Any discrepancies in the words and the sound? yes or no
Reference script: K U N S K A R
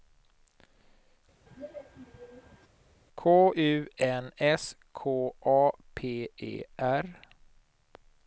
yes